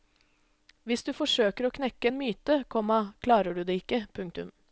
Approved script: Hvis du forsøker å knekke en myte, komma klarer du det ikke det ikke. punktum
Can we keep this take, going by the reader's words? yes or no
no